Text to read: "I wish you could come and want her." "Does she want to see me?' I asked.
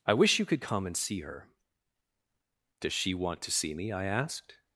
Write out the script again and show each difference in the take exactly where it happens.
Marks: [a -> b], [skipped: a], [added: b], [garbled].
"I wish you could come and [want -> see] her." "Does she want to see me?' I asked.